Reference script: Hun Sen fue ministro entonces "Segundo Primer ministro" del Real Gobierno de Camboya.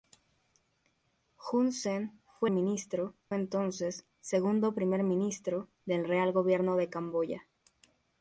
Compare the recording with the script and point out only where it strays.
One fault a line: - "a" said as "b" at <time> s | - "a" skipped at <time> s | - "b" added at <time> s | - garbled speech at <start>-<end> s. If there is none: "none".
none